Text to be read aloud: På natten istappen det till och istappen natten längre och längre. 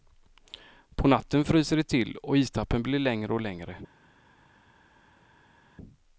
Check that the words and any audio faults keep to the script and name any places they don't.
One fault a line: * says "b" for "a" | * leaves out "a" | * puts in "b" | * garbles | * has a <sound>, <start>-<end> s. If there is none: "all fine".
* says "fryser" for "istappen"
* says "blir" for "natten"